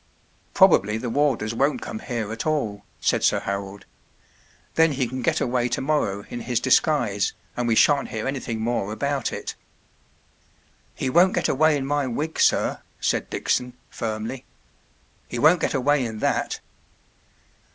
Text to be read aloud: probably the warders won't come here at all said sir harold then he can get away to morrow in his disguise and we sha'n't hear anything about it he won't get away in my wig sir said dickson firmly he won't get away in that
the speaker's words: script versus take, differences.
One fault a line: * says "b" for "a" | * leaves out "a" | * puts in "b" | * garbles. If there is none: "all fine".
* puts in "more"